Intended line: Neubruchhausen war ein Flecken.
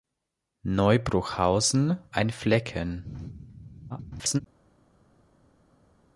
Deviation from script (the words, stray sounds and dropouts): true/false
true